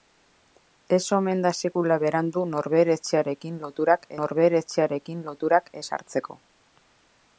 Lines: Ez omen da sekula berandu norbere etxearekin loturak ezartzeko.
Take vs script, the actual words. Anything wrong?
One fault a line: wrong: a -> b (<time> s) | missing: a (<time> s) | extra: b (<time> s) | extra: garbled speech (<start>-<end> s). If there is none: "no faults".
extra: norbere etxearekin loturak (4.2 s)